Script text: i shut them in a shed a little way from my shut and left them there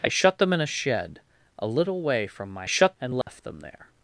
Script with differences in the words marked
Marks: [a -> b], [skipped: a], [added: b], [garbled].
i shut them in a shed a little way from my shut and left them there